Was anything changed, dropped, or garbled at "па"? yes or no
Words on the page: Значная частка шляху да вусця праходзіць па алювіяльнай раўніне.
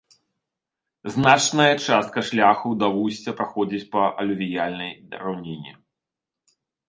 no